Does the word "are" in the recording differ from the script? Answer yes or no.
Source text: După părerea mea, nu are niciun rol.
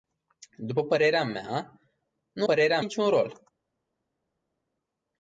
yes